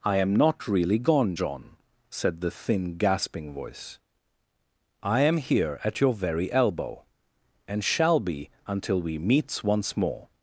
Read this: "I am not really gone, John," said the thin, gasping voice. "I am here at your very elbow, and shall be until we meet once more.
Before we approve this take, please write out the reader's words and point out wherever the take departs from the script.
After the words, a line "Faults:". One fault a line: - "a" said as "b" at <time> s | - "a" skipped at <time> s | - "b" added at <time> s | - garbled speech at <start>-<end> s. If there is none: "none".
"I am not really gone, John," said the thin, gasping voice. "I am here at your very elbow, and shall be until we meets once more.
Faults:
- "meet" said as "meets" at 9.2 s